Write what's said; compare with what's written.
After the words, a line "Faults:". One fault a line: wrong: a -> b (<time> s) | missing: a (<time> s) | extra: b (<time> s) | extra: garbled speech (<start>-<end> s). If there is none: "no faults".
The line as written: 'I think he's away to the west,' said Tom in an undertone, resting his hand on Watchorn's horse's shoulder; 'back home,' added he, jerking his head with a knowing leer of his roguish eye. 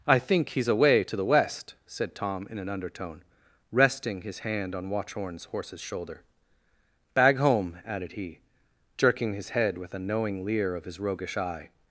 'I think he's away to the west,' said Tom in an undertone, resting his hand on Watchorn's horse's shoulder; 'bag home,' added he, jerking his head with a knowing leer of his roguish eye.
Faults:
wrong: back -> bag (7.1 s)